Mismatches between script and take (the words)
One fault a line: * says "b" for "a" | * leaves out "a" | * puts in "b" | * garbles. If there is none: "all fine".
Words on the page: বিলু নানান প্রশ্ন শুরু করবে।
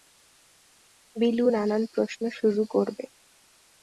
all fine